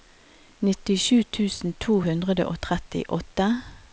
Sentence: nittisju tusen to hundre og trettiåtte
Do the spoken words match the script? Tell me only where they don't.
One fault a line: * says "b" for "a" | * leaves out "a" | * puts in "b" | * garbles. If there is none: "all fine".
all fine